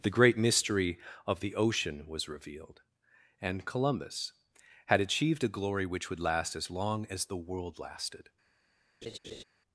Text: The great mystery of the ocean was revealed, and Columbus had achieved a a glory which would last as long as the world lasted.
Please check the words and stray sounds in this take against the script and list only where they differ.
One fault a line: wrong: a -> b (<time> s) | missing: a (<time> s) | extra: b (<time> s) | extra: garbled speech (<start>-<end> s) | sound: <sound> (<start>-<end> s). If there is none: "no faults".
missing: a (5.5 s)
sound: laugh (9.0-9.4 s)